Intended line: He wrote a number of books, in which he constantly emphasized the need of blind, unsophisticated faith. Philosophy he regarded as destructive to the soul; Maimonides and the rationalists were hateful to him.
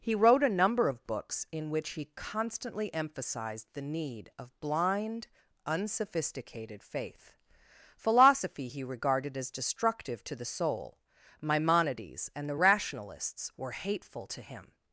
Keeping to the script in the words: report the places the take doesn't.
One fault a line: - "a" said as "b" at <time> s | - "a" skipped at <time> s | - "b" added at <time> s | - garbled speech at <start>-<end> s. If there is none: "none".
none